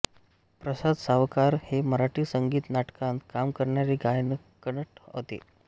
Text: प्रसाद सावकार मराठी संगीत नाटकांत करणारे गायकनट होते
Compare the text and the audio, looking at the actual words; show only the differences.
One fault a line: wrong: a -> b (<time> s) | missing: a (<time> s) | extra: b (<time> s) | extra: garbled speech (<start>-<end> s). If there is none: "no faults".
extra: हे (1.6 s)
extra: काम (3.3 s)